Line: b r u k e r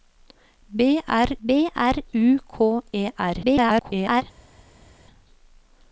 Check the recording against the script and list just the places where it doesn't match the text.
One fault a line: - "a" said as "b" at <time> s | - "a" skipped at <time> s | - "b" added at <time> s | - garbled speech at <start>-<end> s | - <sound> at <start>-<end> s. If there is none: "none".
- "b r" added at 1.4 s
- garbled speech at 3.4-4.2 s